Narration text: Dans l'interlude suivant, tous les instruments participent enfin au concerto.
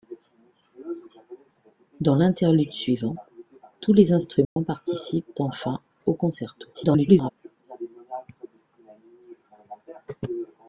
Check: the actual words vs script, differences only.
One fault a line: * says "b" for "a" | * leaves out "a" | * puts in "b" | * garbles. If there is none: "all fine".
* garbles